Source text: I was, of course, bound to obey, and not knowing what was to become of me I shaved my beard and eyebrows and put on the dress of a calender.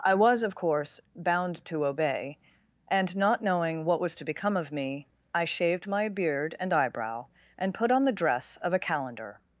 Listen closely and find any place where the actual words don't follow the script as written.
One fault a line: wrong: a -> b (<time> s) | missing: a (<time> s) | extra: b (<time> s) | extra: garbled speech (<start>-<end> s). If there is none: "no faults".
wrong: eyebrows -> eyebrow (6.7 s)